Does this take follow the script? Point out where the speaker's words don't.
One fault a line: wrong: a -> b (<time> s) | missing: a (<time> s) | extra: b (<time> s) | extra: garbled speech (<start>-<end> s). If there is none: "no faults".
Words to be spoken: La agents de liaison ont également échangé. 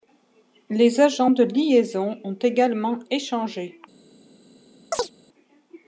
wrong: La -> Les (0.7 s)